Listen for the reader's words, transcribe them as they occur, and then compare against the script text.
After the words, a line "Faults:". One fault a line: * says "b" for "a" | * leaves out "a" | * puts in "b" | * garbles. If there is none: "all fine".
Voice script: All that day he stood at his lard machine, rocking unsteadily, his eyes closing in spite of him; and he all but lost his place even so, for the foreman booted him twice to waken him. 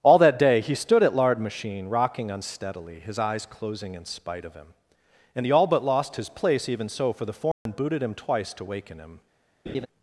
All that day he stood at lard machine, rocking unsteadily, his eyes closing in spite of him; and he all but lost his place even so, for the foreman booted him twice to waken him.
Faults:
* leaves out "his"